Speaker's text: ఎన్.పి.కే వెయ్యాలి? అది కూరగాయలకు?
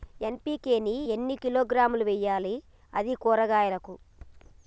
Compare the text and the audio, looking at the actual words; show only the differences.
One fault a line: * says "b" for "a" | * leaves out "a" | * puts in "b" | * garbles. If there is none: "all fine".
* puts in "ని ఎన్ని కిలోగ్రాములు"